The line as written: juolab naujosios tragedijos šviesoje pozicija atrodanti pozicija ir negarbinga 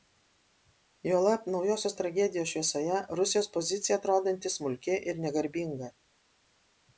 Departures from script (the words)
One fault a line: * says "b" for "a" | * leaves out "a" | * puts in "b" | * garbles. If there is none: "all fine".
* puts in "rusijos"
* says "smulki" for "pozicija"